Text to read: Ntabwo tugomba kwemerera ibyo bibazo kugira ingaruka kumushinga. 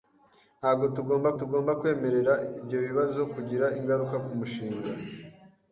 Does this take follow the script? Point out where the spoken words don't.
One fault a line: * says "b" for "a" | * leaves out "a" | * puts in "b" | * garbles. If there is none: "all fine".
* puts in "tugomba"